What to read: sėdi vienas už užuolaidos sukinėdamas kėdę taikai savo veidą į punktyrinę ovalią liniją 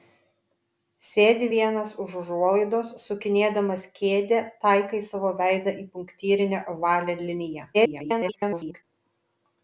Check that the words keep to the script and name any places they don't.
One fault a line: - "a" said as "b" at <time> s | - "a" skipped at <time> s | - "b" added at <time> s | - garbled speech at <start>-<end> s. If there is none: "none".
- garbled speech at 7.7-8.8 s